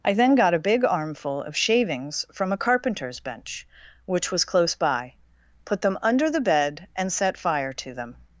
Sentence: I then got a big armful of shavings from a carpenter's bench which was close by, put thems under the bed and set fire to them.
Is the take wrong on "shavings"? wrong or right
right